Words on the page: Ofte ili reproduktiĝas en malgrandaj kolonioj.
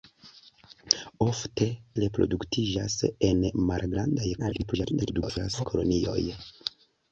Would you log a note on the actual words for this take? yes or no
yes